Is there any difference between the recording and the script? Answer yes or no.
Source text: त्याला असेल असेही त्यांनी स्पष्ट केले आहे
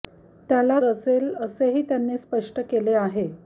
no